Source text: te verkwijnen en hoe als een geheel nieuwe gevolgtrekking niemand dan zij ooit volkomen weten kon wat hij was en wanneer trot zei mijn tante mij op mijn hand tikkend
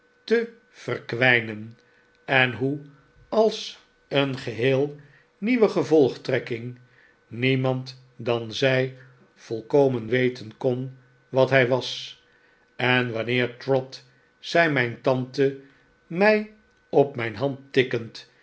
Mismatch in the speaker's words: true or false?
true